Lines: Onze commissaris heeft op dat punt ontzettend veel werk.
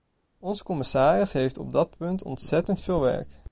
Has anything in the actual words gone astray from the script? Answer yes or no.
no